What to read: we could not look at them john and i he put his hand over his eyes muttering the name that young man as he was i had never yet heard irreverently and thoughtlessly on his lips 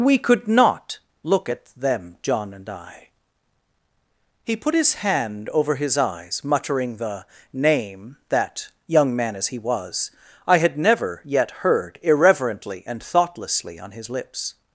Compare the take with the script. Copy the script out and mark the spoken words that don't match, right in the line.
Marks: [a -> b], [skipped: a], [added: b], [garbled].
we could not look at them john and i he put his hand over his eyes muttering the name that young man as he was i had never yet heard irreverently and thoughtlessly on his lips